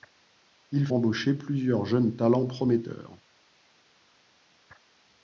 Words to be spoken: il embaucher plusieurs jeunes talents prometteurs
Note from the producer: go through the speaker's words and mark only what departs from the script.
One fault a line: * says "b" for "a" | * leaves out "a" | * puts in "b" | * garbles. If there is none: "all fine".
all fine